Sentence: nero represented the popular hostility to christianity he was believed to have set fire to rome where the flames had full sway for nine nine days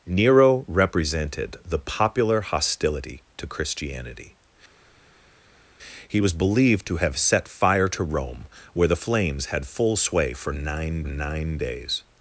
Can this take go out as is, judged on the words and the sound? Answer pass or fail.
pass